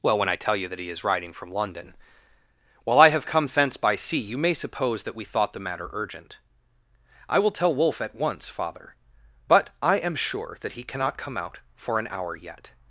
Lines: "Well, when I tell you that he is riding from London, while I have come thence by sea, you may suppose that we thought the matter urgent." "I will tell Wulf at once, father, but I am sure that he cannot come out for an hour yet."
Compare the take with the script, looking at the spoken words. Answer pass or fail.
pass